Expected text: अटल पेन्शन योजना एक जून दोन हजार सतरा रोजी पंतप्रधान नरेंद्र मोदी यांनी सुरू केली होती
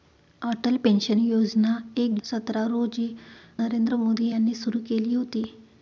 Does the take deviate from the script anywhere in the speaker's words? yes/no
yes